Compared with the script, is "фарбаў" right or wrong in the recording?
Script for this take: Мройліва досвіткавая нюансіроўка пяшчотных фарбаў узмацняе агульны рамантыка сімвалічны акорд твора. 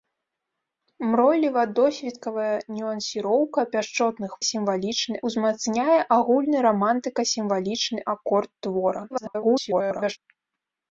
wrong